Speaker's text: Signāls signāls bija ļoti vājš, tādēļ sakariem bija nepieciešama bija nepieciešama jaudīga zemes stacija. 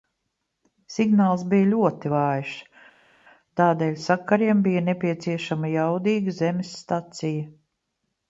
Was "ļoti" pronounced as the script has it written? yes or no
yes